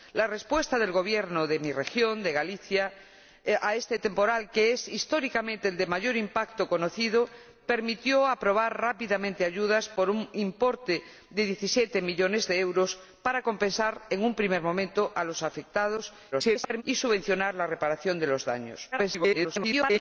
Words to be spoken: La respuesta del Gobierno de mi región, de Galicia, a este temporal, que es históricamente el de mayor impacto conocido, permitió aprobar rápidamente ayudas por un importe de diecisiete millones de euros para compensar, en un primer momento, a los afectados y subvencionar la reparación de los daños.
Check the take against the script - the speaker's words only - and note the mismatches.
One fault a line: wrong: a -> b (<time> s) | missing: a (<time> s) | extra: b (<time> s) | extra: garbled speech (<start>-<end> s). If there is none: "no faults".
extra: garbled speech (16.3-16.8 s)
extra: garbled speech (18.9-20.0 s)